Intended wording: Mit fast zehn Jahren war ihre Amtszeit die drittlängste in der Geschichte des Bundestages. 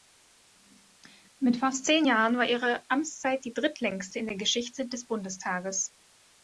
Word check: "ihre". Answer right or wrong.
right